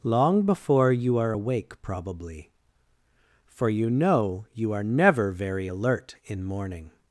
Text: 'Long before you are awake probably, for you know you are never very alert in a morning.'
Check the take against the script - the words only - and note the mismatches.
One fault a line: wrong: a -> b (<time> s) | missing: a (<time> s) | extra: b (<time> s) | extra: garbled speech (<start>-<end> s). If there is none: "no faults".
missing: a (6.4 s)